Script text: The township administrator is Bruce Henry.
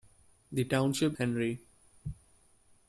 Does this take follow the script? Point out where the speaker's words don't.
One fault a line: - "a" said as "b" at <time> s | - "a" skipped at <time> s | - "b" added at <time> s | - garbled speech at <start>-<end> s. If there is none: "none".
- "administrator is Bruce" skipped at 1.1 s